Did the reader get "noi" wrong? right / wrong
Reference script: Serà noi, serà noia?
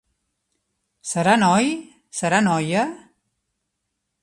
right